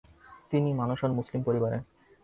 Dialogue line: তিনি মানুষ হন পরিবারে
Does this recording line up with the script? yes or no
no